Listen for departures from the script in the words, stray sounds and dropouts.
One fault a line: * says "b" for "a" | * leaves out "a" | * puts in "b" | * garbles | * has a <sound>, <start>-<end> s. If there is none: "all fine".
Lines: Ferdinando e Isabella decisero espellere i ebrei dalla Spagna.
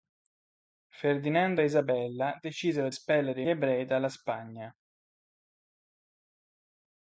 all fine